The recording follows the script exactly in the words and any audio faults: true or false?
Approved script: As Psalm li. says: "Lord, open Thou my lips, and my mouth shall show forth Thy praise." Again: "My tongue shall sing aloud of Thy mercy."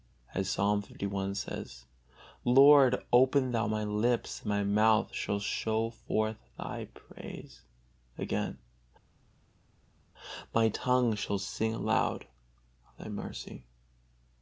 true